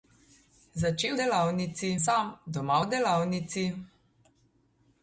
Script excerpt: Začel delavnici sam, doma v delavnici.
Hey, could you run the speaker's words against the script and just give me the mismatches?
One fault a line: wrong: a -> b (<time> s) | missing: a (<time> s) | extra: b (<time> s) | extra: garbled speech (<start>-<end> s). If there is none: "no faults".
no faults